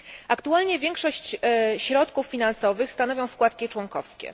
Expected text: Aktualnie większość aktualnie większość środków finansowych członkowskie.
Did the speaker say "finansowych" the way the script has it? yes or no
no